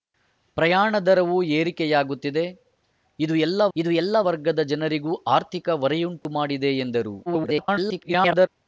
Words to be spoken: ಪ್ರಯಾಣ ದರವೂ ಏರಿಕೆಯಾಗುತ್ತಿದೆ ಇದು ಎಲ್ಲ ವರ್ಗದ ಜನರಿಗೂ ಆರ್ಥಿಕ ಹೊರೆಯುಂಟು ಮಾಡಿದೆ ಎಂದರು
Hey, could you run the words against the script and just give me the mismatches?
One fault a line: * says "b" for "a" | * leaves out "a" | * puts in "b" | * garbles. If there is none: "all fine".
* puts in "ಇದು ಎಲ್ಲ"
* garbles